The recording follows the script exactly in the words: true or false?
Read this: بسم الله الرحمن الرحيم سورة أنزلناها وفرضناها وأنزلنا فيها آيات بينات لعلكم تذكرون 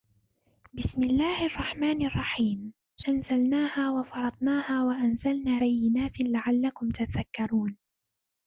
false